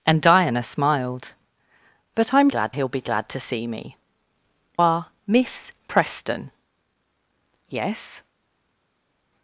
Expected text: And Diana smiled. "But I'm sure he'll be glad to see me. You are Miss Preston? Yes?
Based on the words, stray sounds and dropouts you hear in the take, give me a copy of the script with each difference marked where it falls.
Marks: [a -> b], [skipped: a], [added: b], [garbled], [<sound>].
And Diana smiled. "But I'm [sure -> glad] he'll be glad to see me. [skipped: You] are Miss Preston? Yes?